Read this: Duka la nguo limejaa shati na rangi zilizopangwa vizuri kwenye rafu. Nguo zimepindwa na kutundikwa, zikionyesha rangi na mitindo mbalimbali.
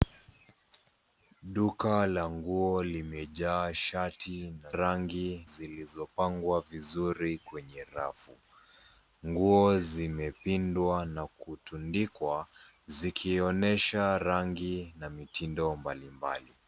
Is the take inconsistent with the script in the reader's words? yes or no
no